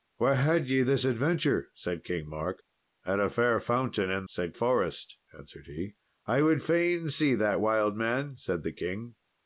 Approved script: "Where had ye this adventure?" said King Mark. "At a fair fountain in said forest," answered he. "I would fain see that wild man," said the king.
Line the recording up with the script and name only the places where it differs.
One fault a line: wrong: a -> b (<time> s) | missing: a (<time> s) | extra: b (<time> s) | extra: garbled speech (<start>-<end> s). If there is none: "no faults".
no faults